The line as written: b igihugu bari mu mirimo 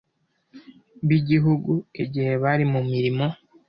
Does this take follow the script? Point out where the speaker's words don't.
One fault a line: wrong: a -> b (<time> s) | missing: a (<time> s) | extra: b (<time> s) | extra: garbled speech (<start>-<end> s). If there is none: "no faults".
extra: igihe (2.0 s)